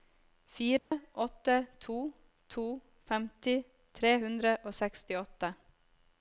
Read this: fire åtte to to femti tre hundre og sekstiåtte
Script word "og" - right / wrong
right